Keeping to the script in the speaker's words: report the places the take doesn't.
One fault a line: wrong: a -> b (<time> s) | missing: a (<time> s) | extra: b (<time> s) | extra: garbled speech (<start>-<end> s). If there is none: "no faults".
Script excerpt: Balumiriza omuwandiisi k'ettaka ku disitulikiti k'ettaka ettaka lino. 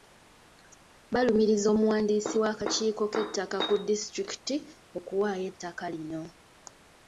extra: w'akakiiko (2.4 s)
wrong: k'ettaka -> okuwaayo (5.0 s)